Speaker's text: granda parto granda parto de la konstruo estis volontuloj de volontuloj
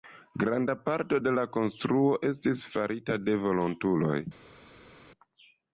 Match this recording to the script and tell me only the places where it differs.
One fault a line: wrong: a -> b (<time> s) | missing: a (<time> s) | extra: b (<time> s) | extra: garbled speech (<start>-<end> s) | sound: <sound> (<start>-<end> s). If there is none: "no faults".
missing: granda parto (1.2 s)
wrong: volontuloj -> farita (2.8 s)